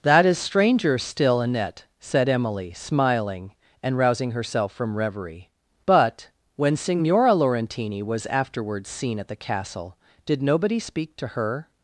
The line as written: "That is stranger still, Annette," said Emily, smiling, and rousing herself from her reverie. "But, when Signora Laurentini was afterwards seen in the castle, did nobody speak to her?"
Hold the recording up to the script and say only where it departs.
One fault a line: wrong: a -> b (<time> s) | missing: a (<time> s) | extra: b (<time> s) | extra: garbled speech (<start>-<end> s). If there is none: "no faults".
missing: her (5.0 s)
wrong: in -> at (9.2 s)